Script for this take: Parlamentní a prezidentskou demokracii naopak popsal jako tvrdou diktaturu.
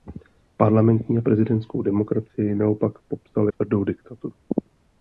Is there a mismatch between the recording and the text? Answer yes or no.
yes